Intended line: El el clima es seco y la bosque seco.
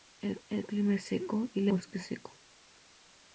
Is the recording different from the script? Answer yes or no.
no